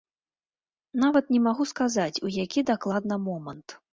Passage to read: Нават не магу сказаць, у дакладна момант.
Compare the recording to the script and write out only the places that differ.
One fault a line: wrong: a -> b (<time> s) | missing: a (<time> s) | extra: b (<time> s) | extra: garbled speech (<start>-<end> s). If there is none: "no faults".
extra: які (2.4 s)